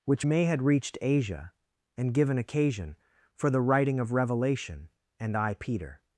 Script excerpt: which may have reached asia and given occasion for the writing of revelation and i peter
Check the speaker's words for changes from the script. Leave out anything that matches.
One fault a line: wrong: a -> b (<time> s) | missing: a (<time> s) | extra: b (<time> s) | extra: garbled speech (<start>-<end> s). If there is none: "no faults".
wrong: have -> had (0.4 s)